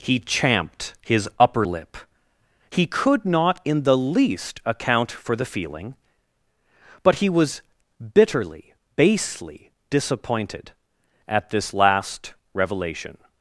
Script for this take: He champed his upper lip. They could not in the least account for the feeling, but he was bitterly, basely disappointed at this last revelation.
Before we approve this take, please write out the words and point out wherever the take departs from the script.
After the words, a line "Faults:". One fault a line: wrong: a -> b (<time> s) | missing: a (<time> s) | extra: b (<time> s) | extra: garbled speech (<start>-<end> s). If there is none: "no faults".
He champed his upper lip. He could not in the least account for the feeling, but he was bitterly, basely disappointed at this last revelation.
Faults:
wrong: They -> He (2.7 s)